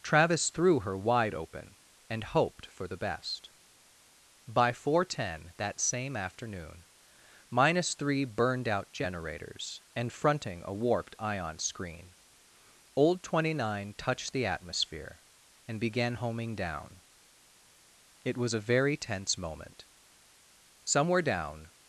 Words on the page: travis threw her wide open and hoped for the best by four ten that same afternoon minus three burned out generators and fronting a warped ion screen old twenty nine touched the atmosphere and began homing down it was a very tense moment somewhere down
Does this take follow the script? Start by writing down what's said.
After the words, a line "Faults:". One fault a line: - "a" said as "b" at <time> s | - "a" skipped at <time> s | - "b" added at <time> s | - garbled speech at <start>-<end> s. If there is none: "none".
travis threw her wide open and hoped for the best by four ten that same afternoon minus three burned out generators and fronting a warped ion screen old twenty nine touched the atmosphere and began homing down it was a very tense moment somewhere down
Faults:
none